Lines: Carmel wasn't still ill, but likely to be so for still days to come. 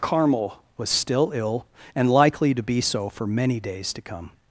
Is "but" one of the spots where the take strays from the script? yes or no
yes